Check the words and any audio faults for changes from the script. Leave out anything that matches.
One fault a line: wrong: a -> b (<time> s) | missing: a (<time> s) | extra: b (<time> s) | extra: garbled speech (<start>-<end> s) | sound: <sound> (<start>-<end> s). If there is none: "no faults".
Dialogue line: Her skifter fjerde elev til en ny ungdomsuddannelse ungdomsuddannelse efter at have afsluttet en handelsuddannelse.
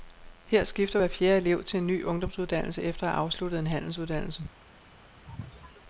extra: hver (1.0 s)
missing: ungdomsuddannelse (2.8 s)
sound: sneeze (5.2-5.8 s)